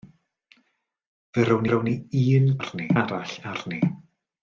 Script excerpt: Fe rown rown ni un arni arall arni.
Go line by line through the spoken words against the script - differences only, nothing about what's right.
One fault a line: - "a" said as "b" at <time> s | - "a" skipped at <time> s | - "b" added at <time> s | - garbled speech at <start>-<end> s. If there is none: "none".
none